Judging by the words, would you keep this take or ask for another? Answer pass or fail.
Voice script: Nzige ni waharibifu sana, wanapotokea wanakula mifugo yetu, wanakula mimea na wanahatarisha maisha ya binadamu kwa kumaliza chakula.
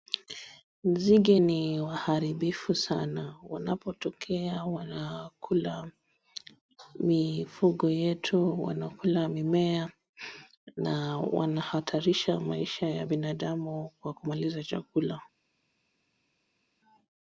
pass